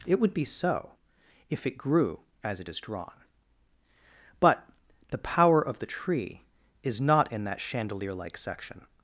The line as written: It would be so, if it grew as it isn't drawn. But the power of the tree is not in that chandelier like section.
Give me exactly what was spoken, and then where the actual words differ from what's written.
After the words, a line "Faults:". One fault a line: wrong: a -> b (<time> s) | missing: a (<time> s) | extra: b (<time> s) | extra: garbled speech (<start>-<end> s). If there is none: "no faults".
It would be so, if it grew as it is drawn. But the power of the tree is not in that chandelier like section.
Faults:
wrong: isn't -> is (2.7 s)